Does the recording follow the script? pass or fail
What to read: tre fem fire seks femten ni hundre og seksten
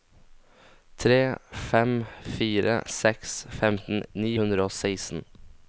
pass